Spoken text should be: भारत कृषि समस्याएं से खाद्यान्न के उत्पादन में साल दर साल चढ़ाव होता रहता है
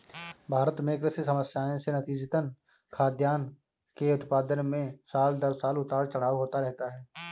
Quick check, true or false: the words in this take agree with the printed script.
false